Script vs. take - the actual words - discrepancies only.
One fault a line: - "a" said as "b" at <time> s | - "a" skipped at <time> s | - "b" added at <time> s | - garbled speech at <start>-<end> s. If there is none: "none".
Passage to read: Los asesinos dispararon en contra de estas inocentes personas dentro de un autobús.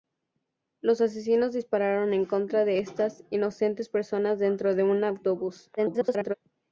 - garbled speech at 5.8-6.3 s